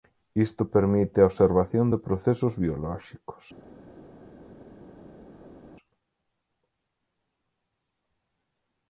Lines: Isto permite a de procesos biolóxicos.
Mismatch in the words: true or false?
true